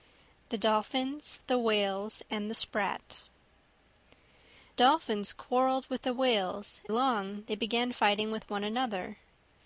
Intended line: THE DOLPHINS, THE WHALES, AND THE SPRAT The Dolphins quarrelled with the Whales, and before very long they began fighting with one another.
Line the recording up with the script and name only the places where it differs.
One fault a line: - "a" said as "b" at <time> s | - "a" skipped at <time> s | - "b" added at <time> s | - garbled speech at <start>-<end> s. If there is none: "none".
- "The" skipped at 3.2 s
- "and before very" skipped at 6.8 s